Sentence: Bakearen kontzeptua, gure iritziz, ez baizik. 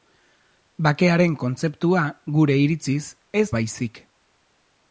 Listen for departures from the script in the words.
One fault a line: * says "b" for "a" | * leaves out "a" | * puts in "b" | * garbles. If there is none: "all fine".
all fine